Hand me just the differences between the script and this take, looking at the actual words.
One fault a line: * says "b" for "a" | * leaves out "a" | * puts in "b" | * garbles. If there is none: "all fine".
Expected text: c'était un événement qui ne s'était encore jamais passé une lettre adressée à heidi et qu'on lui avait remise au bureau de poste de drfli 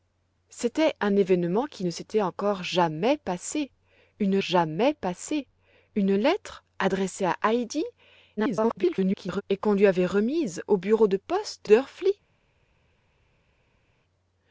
* puts in "jamais passé une"
* garbles
* leaves out "de"